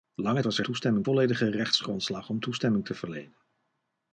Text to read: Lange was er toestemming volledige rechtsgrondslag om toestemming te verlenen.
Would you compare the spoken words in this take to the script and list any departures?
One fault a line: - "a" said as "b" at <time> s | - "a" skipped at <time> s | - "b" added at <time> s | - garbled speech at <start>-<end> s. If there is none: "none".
none